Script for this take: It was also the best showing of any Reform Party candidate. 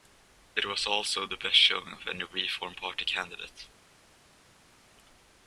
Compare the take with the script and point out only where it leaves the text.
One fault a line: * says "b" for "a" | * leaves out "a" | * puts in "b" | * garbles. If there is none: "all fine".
all fine